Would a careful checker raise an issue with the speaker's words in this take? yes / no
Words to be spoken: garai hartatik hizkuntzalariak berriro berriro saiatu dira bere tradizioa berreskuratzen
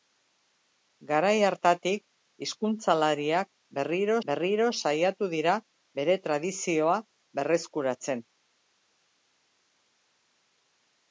no